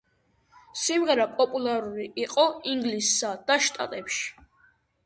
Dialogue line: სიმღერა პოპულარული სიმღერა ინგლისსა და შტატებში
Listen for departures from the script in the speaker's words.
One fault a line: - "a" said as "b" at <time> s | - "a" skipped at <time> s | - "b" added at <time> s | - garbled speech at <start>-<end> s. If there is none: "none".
- "სიმღერა" said as "იყო" at 2.2 s